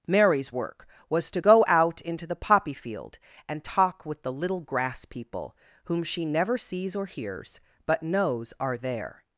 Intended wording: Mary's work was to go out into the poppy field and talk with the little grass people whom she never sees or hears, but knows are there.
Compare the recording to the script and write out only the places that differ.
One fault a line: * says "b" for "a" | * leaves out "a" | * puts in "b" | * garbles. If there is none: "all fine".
all fine